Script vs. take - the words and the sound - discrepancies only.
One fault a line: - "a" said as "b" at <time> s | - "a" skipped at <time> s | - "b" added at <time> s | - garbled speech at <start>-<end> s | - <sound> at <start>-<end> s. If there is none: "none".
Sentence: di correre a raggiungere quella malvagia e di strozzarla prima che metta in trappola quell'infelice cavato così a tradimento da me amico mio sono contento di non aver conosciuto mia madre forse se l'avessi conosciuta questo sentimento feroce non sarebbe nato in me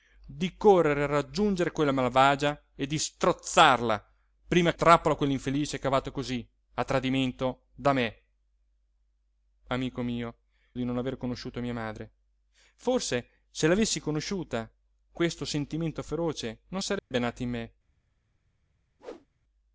- "che metta in" skipped at 4.7 s
- "sono contento" skipped at 10.4 s
- dropout at 17.0-17.1 s
- whoosh at 19.0-19.3 s